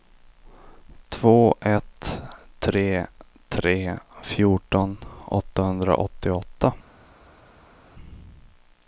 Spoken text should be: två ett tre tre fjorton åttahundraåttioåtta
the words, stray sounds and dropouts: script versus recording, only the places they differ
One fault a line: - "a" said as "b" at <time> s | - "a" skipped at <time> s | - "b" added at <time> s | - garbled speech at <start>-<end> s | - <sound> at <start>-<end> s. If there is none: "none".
none